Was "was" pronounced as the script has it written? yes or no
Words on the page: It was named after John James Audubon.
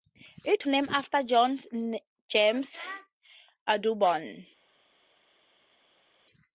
no